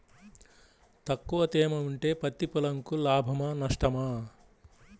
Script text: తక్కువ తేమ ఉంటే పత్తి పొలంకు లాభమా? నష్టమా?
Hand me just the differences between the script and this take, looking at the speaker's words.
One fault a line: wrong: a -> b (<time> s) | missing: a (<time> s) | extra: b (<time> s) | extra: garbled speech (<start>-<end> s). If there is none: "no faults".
no faults